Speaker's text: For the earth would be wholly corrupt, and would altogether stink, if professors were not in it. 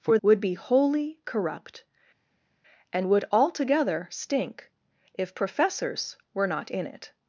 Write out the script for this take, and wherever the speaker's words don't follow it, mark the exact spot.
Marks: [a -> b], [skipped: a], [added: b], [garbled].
For [skipped: the earth] would be wholly corrupt, and would altogether stink, if professors were not in it.